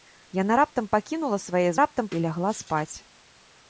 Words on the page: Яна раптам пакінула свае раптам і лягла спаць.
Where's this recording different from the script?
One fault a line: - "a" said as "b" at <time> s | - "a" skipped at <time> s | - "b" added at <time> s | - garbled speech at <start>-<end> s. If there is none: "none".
none